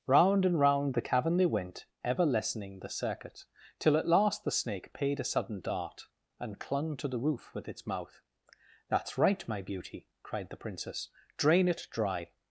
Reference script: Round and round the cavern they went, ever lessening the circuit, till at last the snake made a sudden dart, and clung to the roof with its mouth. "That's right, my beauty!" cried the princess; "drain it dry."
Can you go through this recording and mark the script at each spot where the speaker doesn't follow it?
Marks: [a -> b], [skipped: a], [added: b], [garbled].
Round and round the cavern they went, ever lessening the circuit, till at last the snake [made -> paid] a sudden dart, and clung to the roof with its mouth. "That's right, my beauty!" cried the princess; "drain it dry."